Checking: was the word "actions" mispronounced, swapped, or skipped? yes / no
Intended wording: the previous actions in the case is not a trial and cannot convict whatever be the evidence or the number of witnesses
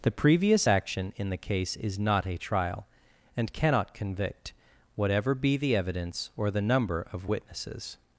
yes